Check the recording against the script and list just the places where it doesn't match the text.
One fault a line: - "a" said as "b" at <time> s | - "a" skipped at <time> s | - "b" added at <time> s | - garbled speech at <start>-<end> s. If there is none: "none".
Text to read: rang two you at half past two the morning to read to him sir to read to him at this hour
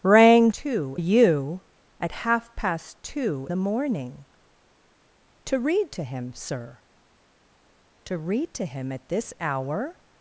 none